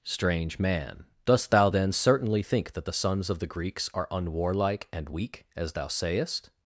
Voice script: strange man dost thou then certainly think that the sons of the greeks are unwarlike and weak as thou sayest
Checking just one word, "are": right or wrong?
right